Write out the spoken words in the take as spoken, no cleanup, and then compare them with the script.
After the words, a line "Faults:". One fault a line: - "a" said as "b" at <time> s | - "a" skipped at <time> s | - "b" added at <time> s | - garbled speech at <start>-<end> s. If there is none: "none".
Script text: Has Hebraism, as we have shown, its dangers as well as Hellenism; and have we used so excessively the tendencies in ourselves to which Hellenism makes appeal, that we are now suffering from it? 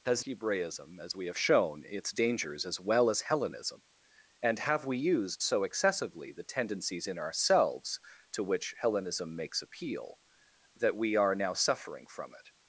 Has Hebraism, as we have shown, its dangers as well as Hellenism; and have we used so excessively the tendencies in ourselves to which Hellenism makes appeal, that we are now suffering from it?
Faults:
none